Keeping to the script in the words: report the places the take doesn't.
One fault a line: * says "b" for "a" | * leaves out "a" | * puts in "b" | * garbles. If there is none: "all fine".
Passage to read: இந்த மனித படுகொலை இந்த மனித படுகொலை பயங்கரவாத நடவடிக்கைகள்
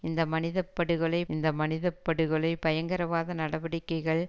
all fine